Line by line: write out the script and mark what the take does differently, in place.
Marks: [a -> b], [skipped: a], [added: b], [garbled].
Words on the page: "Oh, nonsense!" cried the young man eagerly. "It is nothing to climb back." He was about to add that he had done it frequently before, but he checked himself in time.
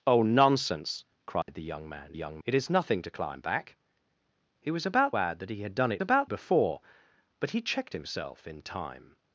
"Oh, nonsense!" cried the young man [eagerly. -> young] "It is nothing to climb back." He was about [skipped: to] add that he had done it [frequently -> about] before, but he checked himself in time.